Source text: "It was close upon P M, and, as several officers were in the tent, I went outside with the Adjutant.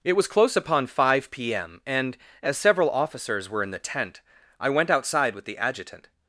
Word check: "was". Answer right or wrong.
right